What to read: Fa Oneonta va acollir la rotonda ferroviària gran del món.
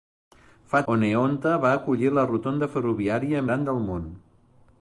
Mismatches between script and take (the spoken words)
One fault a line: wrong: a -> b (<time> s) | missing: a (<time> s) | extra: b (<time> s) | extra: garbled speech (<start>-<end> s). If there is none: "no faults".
no faults